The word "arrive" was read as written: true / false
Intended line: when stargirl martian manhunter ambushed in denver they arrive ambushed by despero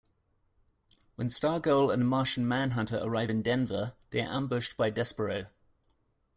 false